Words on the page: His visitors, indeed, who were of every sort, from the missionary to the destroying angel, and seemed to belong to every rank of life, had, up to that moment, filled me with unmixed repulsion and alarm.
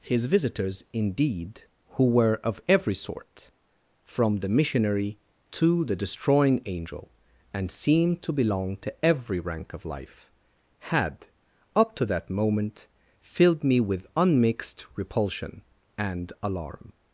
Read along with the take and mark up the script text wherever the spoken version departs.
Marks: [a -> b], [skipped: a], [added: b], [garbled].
His visitors, indeed, who were of every sort, from the missionary to the destroying angel, and seemed to belong to every rank of life, had, up to that moment, filled me with unmixed repulsion and alarm.